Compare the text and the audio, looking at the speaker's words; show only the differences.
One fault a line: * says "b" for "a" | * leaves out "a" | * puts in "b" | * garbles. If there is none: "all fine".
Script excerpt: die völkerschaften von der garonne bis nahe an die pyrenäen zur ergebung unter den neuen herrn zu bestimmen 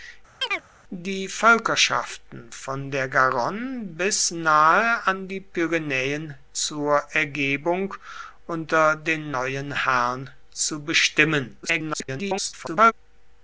* garbles